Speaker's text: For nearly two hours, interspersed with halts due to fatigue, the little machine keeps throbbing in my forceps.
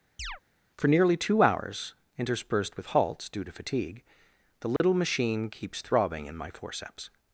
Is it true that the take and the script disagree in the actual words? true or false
false